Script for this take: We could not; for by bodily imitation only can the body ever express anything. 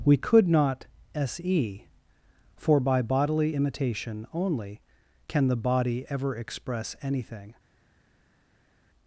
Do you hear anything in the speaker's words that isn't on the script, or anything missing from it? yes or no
yes